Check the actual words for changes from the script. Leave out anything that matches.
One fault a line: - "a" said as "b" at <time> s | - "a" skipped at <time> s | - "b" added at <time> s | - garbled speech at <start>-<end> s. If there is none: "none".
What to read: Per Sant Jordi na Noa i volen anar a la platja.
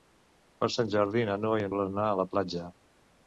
none